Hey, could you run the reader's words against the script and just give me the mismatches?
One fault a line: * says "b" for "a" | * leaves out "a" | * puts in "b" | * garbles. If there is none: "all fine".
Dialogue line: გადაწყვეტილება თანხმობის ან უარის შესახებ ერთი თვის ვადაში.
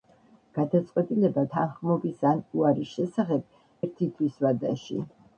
all fine